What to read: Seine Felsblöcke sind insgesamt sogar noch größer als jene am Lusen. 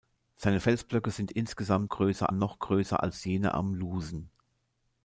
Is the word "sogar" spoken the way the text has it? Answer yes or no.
no